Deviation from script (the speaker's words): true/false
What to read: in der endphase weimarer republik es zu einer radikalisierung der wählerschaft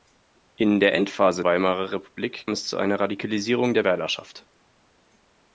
false